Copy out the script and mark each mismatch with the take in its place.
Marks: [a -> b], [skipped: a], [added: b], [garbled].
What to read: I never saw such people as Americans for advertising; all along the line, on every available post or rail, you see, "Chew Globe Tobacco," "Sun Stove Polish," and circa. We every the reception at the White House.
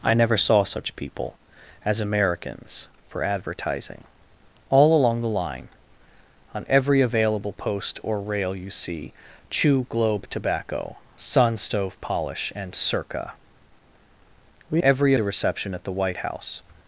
I never saw such people as Americans for advertising; all along the line, on every available post or rail, you see, "Chew Globe Tobacco," "Sun Stove Polish," and circa. We every the reception at the White House.